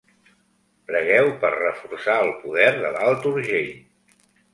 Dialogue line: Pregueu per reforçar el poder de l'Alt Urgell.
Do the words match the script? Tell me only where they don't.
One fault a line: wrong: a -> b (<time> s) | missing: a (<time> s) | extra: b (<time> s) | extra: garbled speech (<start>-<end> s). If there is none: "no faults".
no faults